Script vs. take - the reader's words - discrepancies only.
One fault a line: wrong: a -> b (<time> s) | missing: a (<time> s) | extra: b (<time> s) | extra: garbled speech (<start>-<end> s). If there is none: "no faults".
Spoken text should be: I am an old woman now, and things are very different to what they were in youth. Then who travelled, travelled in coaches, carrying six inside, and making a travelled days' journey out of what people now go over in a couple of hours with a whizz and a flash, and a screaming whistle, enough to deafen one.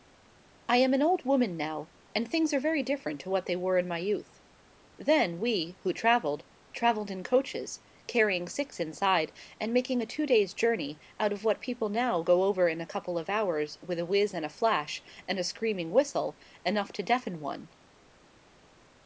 extra: my (3.9 s)
extra: we (5.4 s)
wrong: travelled -> two (10.1 s)